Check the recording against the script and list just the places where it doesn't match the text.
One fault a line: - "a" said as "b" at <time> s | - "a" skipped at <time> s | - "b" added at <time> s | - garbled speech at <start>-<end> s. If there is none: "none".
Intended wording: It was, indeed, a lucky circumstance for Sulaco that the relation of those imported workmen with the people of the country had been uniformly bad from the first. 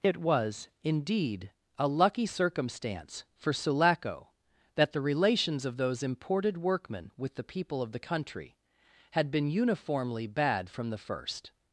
- "relation" said as "relations" at 5.0 s